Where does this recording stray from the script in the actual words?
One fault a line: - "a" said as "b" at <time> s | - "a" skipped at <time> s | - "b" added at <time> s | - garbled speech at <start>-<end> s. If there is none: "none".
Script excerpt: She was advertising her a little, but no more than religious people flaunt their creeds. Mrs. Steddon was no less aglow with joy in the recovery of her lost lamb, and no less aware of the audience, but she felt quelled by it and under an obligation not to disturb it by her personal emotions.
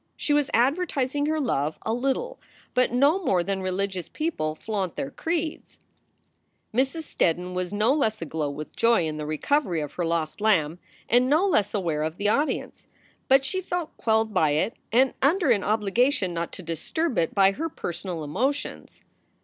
- "love" added at 1.4 s